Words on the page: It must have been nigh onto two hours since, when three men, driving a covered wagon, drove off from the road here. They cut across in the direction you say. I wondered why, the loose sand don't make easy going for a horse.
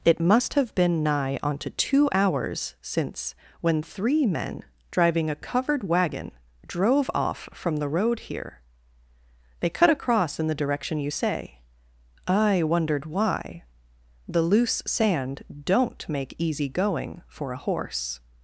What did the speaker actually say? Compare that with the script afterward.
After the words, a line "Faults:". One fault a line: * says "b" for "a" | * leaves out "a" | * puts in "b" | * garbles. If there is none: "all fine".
It must have been nigh onto two hours since, when three men, driving a covered wagon, drove off from the road here. They cut across in the direction you say. I wondered why, the loose sand don't make easy going for a horse.
Faults:
all fine